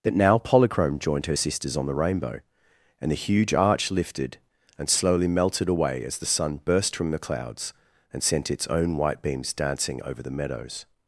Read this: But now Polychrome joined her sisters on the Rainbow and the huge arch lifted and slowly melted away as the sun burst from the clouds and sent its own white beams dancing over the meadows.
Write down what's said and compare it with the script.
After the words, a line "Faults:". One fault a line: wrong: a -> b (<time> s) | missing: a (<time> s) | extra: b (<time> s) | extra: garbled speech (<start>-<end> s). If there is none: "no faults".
That now Polychrome joined her sisters on the Rainbow and the huge arch lifted and slowly melted away as the sun burst from the clouds and sent its own white beams dancing over the meadows.
Faults:
wrong: But -> That (0.0 s)